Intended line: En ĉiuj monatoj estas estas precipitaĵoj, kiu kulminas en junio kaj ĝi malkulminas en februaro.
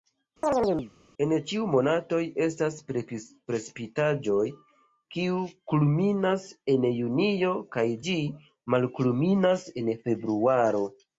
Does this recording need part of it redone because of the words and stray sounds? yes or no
yes